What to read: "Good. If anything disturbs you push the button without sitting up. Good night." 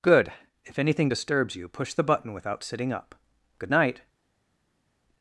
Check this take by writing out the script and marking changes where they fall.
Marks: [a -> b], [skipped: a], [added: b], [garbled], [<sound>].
"Good. If anything disturbs you push the button without sitting up. Good night."